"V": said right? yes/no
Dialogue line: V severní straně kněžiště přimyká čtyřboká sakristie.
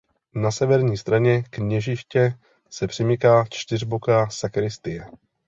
no